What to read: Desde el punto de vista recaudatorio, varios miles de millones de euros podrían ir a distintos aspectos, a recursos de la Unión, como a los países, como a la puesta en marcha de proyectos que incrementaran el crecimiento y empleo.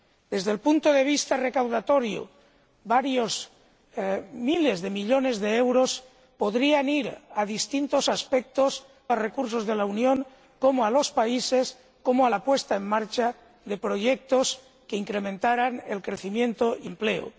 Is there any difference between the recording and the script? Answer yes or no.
no